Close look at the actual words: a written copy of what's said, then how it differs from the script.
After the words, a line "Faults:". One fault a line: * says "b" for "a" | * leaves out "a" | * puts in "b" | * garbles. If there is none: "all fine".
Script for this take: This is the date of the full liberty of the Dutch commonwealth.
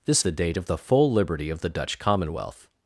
This the date of the full liberty of the Dutch commonwealth.
Faults:
* leaves out "is"